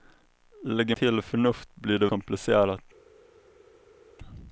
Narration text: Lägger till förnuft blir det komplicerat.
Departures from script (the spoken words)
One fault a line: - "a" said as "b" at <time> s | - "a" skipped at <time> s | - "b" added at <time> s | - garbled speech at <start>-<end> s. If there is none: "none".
none